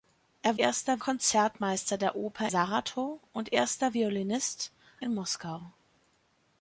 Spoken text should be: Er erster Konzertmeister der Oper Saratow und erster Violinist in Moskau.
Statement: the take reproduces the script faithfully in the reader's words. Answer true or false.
true